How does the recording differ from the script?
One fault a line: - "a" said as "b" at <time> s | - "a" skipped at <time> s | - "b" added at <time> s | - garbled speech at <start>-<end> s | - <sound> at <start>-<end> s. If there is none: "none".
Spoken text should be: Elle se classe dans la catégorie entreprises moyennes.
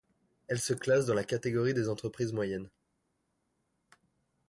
- "des" added at 1.7 s